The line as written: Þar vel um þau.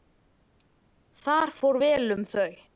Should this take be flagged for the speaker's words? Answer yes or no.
yes